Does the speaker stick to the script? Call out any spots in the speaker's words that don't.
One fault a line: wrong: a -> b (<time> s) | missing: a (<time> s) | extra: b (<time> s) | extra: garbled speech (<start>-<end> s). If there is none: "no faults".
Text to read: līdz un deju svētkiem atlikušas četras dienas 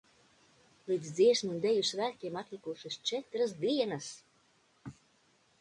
extra: dziesmu (1.2 s)